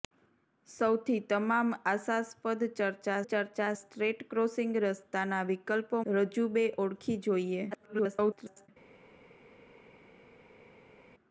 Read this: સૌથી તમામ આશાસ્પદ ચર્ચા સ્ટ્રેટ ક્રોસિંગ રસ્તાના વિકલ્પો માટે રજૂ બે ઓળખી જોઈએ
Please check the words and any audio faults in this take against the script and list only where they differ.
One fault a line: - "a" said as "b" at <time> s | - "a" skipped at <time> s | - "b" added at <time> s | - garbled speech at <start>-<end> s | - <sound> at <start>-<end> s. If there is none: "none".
- "ચર્ચા" added at 3.2 s
- "માટે" skipped at 6.0 s
- garbled speech at 7.7-8.7 s